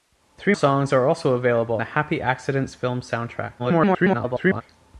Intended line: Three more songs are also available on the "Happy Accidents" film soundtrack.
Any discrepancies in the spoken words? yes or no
yes